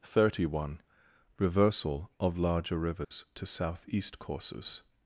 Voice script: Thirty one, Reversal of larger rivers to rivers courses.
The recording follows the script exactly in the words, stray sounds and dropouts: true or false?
false